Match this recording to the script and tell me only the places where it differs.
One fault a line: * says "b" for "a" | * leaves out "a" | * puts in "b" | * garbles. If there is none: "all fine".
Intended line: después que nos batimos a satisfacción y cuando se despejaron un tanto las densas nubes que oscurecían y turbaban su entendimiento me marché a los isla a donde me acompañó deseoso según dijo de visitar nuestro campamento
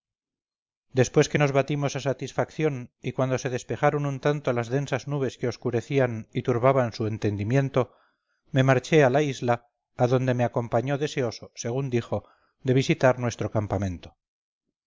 * says "la" for "los"